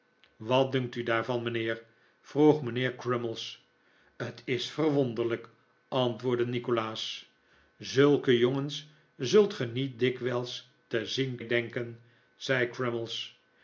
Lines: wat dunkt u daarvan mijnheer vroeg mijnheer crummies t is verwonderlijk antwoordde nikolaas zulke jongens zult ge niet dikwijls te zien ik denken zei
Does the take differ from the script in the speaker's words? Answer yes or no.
no